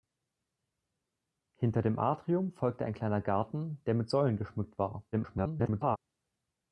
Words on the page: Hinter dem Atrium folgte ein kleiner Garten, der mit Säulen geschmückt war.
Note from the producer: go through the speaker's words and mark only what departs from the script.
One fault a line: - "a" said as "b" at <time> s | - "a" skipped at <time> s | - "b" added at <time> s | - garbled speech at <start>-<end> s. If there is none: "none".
- garbled speech at 5.1-6.0 s